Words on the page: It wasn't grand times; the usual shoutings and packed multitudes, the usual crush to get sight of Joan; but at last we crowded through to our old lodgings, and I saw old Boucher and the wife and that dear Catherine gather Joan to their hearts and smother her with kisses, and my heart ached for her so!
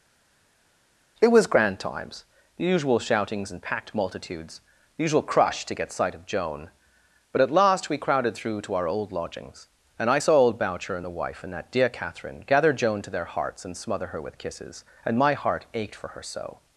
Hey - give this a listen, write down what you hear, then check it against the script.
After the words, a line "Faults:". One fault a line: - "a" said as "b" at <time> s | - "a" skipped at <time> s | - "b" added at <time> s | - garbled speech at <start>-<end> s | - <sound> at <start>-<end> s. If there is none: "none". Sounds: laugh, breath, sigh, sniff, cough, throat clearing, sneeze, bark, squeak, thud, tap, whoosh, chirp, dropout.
It was grand times; the usual shoutings and packed multitudes, the usual crush to get sight of Joan; but at last we crowded through to our old lodgings, and I saw old Boucher and the wife and that dear Catherine gather Joan to their hearts and smother her with kisses, and my heart ached for her so!
Faults:
- "wasn't" said as "was" at 1.3 s